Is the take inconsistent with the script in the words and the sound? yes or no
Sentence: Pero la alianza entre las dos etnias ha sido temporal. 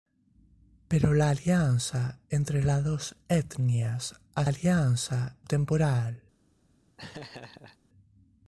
yes